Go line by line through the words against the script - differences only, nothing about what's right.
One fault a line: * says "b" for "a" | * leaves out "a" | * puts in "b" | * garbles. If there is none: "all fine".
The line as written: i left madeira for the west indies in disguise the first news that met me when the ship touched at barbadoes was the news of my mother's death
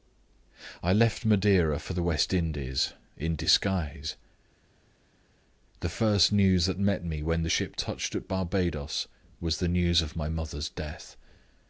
all fine